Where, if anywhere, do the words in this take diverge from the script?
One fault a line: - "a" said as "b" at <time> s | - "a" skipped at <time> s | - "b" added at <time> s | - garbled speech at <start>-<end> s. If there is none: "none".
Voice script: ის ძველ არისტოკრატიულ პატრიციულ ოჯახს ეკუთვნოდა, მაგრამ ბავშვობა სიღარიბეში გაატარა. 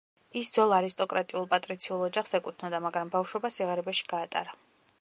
none